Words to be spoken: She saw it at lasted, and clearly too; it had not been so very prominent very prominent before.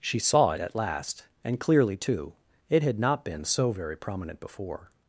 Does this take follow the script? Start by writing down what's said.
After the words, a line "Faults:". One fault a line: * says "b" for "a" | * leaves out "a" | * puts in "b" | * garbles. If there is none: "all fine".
She saw it at last, and clearly too; it had not been so very prominent before.
Faults:
* says "last" for "lasted"
* leaves out "very prominent"